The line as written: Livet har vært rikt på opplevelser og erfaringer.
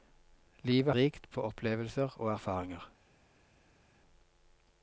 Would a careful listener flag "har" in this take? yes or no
yes